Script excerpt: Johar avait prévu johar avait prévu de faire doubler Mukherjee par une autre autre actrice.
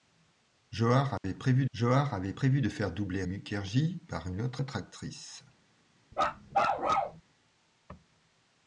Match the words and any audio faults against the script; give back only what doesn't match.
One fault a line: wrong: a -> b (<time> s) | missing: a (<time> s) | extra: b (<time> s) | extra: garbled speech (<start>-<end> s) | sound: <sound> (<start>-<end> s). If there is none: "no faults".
sound: dropout (1.2-1.2 s)
sound: bark (6.1-7.2 s)